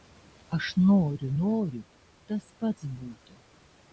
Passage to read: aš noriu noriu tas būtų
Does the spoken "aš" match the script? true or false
true